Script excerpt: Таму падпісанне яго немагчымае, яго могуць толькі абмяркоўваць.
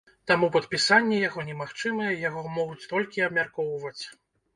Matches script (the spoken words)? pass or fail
pass